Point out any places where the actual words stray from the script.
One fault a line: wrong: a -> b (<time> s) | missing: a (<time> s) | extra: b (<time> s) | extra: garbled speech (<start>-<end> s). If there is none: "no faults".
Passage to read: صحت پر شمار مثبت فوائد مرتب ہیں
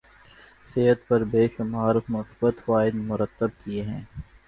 extra: بے (1.3 s)
extra: کیے (3.6 s)